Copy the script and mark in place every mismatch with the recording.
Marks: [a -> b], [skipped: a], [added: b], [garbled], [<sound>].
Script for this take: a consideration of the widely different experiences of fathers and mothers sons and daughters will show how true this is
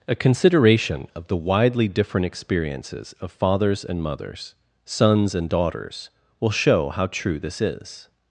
a consideration of the widely different experiences of fathers and mothers sons and daughters will show how true this is